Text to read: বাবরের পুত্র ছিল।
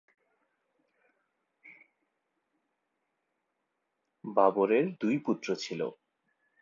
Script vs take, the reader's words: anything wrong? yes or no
yes